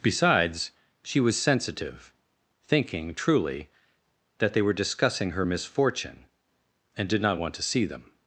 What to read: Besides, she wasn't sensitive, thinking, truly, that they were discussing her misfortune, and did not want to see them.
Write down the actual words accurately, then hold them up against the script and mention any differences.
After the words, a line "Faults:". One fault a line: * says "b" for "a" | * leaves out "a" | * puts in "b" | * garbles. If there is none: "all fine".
Besides, she was sensitive, thinking, truly, that they were discussing her misfortune, and did not want to see them.
Faults:
* says "was" for "wasn't"